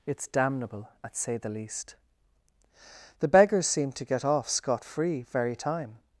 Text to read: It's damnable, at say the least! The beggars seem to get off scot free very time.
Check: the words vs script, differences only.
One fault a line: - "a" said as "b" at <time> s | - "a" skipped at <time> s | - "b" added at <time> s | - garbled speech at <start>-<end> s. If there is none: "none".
none